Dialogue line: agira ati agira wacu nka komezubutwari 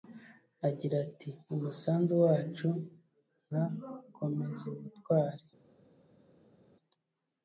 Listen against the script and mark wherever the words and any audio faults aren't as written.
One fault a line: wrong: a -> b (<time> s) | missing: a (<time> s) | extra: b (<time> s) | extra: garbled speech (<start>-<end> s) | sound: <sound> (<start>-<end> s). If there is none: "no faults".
wrong: agira -> umusanzu (1.5 s)